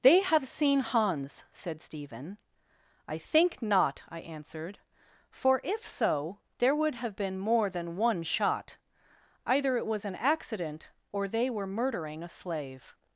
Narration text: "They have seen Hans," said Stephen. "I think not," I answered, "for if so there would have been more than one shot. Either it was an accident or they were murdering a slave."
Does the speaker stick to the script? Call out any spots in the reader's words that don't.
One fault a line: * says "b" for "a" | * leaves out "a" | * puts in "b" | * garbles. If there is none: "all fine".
all fine